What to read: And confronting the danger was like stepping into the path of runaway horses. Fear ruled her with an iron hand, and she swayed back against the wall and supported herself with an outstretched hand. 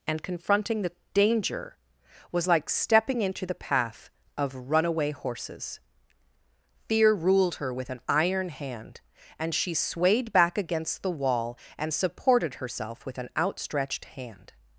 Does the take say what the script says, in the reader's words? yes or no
yes